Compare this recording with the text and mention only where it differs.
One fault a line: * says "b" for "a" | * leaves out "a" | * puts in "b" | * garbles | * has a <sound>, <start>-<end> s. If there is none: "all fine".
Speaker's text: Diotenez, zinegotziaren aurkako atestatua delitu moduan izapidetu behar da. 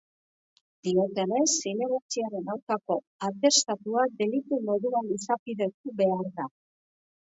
all fine